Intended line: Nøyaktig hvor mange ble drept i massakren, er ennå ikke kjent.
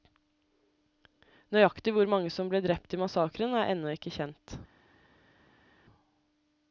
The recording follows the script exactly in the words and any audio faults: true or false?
false